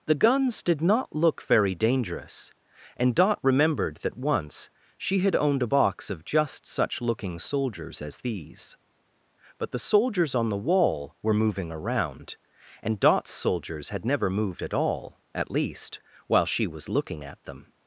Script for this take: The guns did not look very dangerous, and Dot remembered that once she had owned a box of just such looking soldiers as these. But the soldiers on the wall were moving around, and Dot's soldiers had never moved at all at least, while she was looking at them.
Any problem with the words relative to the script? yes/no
no